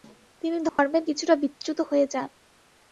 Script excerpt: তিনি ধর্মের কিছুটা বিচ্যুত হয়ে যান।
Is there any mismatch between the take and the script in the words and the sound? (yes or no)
yes